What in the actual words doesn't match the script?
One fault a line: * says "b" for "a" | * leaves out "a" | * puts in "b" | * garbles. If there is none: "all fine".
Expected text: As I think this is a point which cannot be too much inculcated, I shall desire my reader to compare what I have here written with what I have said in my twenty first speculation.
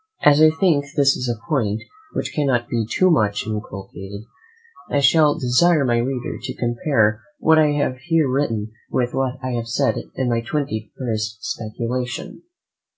all fine